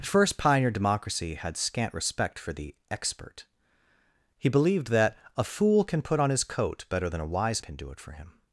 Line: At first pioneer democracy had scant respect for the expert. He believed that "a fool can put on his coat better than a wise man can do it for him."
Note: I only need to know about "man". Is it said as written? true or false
false